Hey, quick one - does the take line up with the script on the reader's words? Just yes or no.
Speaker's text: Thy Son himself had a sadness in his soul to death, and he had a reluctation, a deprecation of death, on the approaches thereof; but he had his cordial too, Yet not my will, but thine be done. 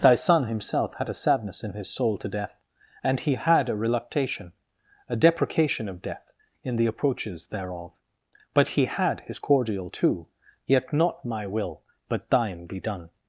no